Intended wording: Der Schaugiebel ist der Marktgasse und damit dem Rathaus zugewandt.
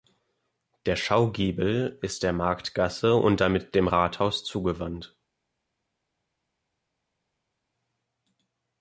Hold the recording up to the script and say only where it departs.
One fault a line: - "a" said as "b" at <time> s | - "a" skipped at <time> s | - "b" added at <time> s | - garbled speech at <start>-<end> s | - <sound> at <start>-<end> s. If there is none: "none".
none